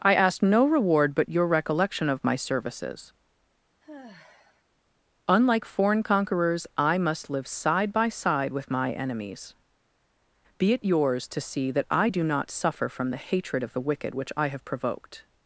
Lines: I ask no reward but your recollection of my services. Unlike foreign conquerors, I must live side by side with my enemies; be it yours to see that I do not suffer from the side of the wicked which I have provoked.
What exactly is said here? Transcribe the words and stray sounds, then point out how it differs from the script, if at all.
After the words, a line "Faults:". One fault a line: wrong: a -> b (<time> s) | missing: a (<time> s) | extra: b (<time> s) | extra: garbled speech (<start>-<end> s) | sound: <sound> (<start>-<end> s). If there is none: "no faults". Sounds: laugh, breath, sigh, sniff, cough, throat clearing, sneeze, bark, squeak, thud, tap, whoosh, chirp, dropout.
I ask no reward but your recollection of my services. Unlike foreign conquerors, I must live side by side with my enemies; be it yours to see that I do not suffer from the hatred of the wicked which I have provoked.
Faults:
sound: sigh (3.8-4.6 s)
wrong: side -> hatred (13.2 s)